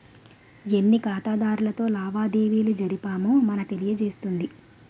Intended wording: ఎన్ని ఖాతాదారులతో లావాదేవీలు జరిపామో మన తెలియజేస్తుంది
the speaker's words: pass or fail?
pass